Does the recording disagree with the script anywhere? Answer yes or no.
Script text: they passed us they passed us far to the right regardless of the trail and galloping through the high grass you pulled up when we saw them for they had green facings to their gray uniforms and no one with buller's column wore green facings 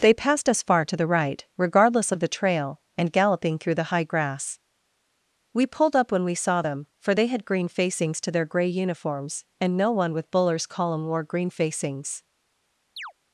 yes